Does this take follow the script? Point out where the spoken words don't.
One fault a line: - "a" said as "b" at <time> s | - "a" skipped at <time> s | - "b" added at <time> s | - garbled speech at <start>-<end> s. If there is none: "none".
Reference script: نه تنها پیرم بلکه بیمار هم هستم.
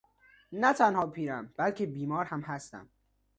none